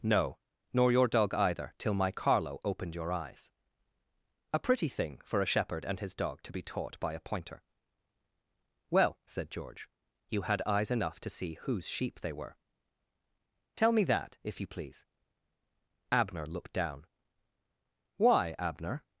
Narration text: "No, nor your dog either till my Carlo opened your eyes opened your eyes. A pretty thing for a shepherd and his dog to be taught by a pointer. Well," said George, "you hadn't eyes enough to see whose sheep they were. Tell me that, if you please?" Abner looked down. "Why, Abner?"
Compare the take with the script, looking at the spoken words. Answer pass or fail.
fail